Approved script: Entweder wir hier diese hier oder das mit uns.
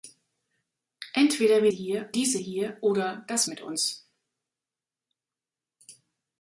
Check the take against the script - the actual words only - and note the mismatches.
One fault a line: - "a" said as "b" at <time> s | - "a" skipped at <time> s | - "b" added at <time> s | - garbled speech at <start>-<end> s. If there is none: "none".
none